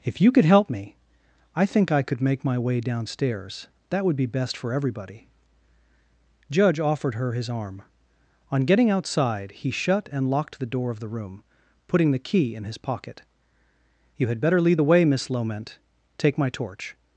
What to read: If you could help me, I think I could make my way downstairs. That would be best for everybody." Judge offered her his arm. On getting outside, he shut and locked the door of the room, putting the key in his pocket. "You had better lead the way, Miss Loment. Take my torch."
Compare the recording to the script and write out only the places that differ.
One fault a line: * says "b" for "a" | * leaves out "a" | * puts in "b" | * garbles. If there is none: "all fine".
all fine